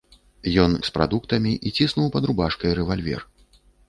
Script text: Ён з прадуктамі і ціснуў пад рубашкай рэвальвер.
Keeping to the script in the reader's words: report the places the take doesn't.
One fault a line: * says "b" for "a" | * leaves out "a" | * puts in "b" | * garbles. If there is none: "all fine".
all fine